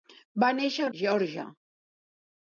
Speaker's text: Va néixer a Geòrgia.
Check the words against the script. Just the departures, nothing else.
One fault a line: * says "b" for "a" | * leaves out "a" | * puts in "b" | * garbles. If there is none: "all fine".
all fine